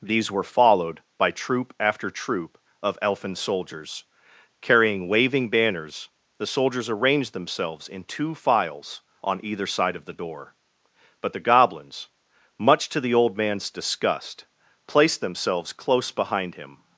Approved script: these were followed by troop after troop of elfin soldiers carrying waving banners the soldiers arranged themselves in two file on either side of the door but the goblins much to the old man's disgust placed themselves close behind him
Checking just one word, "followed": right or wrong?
right